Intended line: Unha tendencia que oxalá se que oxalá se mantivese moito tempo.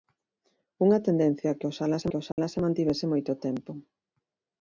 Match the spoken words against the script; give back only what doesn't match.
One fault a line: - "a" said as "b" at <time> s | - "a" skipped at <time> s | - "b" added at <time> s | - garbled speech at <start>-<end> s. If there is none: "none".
none